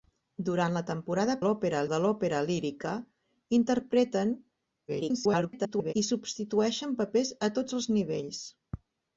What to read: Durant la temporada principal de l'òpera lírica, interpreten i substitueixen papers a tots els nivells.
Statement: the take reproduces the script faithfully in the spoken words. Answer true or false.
false